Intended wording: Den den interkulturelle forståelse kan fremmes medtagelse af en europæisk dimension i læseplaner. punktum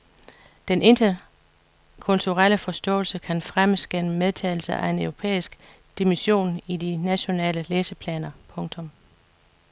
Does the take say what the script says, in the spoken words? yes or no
no